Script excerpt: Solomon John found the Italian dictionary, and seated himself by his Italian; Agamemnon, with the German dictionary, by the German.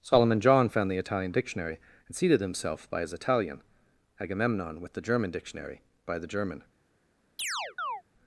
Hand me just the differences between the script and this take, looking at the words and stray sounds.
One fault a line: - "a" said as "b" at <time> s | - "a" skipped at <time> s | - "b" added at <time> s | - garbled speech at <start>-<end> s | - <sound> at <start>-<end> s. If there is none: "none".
- chirp at 7.4-8.0 s